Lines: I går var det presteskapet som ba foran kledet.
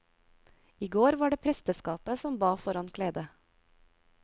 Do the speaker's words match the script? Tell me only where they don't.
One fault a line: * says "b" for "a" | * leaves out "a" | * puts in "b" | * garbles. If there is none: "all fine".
all fine